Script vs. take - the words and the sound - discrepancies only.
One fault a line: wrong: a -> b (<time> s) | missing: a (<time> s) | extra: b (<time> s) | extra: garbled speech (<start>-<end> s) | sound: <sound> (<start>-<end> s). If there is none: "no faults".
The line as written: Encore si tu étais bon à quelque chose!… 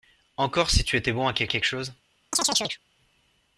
extra: quelque (1.5 s)
sound: chirp (2.3-2.8 s)